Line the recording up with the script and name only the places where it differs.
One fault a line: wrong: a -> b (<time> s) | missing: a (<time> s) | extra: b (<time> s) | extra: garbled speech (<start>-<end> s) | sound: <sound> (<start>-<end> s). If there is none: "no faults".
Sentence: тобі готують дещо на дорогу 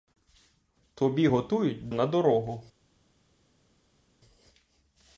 missing: дещо (1.9 s)